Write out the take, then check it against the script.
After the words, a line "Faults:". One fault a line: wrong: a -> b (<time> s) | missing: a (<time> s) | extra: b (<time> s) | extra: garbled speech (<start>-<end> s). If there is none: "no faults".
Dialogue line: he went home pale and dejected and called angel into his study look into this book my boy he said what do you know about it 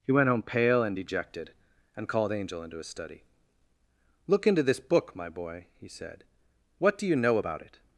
he went home pale and dejected and called angel into his study look into this book my boy he said what do you know about it
Faults:
no faults